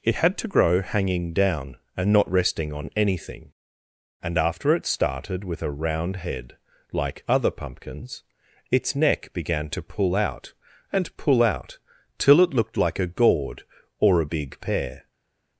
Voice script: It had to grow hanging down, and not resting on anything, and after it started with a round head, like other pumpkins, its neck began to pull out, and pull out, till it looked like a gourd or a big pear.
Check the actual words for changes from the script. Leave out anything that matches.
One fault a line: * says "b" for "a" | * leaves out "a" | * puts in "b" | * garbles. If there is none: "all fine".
all fine